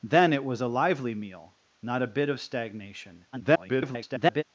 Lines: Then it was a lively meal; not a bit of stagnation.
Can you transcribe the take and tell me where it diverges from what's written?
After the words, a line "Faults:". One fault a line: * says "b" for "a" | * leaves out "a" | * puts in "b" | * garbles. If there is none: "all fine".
Then it was a lively meal; not a bit of stagnation. [garbled]
Faults:
* garbles